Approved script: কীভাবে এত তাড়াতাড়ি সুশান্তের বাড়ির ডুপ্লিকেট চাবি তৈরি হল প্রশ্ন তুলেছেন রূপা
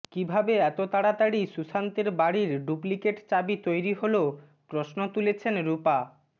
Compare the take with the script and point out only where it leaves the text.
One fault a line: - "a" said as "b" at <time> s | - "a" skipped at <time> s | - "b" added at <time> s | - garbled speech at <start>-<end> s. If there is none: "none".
none